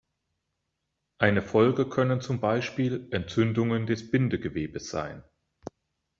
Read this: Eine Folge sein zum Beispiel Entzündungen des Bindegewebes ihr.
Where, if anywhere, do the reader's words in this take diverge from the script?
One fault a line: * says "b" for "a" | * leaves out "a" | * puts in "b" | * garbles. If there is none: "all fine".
* says "können" for "sein"
* says "sein" for "ihr"